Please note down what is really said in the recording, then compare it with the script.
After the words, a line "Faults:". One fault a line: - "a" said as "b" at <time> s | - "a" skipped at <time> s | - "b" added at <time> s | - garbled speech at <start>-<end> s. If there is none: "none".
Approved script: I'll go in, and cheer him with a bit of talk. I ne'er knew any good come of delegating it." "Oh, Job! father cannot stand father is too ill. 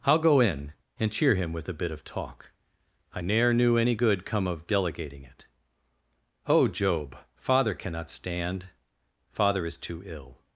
I'll go in, and cheer him with a bit of talk. I ne'er knew any good come of delegating it." "Oh, Job! father cannot stand father is too ill.
Faults:
none